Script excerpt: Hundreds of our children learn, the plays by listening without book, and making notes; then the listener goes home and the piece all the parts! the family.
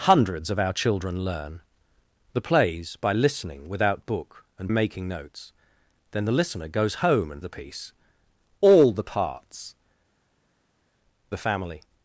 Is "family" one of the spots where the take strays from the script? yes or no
no